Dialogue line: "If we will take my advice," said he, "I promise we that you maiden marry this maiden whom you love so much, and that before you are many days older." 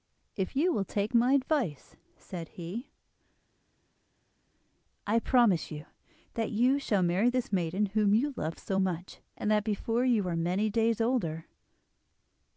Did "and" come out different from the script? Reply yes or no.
no